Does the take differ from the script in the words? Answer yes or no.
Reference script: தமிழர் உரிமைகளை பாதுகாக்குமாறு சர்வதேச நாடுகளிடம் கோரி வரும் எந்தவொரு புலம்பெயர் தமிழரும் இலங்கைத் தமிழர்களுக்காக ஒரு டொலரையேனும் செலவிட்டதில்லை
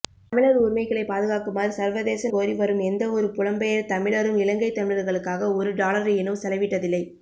yes